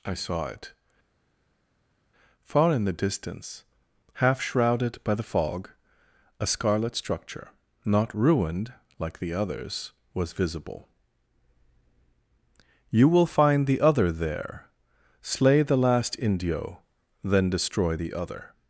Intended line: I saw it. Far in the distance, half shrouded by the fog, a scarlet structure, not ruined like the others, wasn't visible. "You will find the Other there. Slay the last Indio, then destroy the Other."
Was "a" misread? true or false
false